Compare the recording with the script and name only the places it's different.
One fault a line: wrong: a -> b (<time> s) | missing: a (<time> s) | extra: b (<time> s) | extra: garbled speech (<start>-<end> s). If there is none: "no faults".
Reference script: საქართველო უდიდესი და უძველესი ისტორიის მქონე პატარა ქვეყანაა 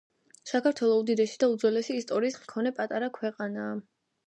no faults